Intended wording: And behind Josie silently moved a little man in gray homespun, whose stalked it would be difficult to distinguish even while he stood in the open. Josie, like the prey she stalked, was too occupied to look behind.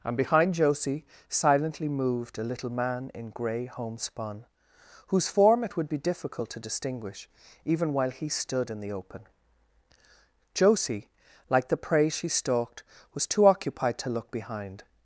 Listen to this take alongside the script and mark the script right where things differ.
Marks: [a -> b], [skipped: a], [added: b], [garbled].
And behind Josie silently moved a little man in gray homespun, whose [stalked -> form] it would be difficult to distinguish even while he stood in the open. Josie, like the prey she stalked, was too occupied to look behind.